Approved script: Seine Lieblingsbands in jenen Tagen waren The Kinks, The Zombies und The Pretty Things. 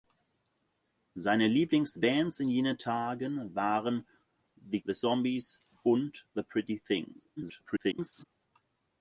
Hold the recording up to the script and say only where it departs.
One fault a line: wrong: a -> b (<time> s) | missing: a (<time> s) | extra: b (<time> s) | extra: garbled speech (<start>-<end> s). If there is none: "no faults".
missing: Kinks (4.8 s)
extra: garbled speech (7.4-8.2 s)